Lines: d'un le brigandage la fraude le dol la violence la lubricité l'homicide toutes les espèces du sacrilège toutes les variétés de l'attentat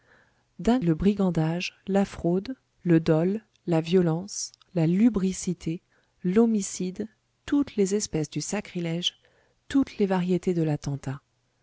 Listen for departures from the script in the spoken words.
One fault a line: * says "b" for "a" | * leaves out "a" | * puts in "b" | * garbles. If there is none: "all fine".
all fine